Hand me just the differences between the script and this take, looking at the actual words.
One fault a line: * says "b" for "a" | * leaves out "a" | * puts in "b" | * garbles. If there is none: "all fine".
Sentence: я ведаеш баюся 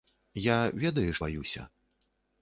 all fine